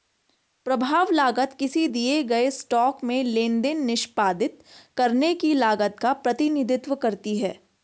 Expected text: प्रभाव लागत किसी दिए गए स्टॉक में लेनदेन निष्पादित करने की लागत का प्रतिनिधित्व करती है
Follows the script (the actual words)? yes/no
yes